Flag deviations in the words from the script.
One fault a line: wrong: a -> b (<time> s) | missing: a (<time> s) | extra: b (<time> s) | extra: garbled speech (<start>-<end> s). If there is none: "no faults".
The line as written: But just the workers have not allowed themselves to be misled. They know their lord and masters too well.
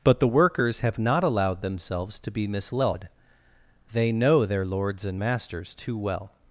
missing: just (0.2 s)
wrong: lord -> lords (4.6 s)